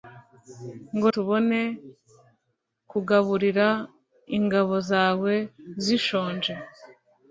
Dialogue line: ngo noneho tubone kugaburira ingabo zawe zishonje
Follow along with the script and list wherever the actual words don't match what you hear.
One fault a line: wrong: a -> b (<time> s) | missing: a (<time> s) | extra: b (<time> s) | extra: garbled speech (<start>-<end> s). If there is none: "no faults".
missing: noneho (1.1 s)